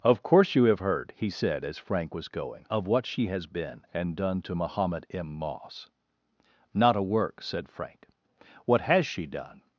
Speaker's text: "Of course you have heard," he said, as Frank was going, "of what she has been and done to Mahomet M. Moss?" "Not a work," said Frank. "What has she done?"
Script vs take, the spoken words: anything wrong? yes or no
no